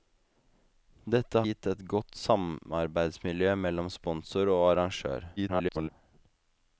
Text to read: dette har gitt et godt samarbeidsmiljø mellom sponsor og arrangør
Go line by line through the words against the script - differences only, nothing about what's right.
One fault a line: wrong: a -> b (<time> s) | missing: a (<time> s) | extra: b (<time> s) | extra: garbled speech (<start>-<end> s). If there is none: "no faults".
missing: har (1.4 s)
extra: garbled speech (5.4-5.9 s)